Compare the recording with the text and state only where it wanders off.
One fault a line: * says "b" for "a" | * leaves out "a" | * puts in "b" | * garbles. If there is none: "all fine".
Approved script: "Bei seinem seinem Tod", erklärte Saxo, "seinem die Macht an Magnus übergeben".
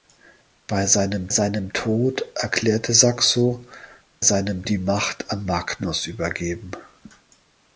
all fine